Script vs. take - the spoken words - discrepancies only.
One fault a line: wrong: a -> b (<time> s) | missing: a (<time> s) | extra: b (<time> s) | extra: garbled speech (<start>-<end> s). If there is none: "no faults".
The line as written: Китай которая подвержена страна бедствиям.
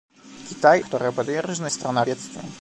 no faults